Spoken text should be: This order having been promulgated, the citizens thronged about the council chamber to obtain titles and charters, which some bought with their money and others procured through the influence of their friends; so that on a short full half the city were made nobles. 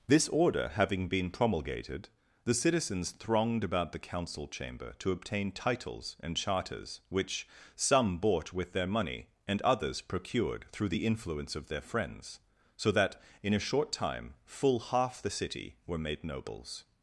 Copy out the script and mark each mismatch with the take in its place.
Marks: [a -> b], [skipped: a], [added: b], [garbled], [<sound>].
This order having been promulgated, the citizens thronged about the council chamber to obtain titles and charters, which some bought with their money and others procured through the influence of their friends; so that [on -> in] a short [added: time] full half the city were made nobles.